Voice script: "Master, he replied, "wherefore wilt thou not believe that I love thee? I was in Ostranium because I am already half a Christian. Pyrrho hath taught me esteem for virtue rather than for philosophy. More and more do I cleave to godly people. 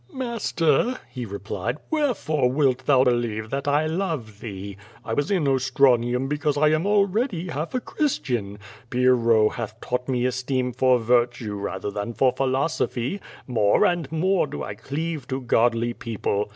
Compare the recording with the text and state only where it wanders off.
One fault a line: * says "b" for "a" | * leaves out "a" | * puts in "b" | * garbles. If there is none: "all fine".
* leaves out "not"